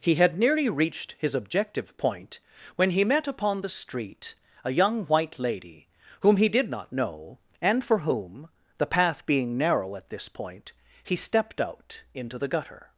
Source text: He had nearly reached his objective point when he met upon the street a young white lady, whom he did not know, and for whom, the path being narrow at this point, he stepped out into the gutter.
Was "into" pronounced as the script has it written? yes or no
yes